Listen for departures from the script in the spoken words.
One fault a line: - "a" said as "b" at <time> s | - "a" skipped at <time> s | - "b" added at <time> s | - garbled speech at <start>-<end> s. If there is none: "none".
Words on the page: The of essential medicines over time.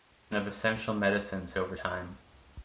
none